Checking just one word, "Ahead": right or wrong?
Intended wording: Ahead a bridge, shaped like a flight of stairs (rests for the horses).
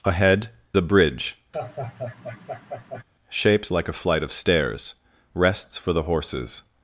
right